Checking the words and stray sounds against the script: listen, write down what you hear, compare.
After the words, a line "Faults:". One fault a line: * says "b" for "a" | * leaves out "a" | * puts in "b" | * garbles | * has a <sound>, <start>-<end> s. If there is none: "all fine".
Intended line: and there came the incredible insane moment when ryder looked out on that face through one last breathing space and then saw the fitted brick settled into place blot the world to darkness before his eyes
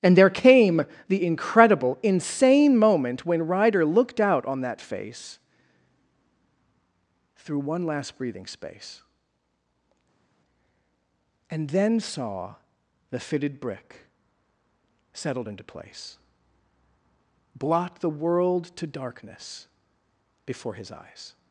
and there came the incredible insane moment when ryder looked out on that face through one last breathing space and then saw the fitted brick settled into place blot the world to darkness before his eyes
Faults:
all fine